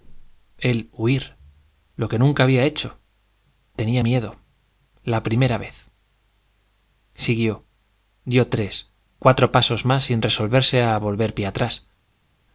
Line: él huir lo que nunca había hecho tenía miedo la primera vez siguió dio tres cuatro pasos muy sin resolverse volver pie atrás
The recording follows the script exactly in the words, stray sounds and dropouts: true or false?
false